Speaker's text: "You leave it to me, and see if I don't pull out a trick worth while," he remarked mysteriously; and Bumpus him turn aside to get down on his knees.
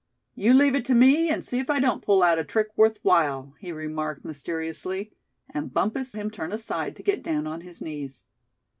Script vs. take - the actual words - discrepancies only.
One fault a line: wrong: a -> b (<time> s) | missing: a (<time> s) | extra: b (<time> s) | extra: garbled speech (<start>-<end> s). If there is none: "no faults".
no faults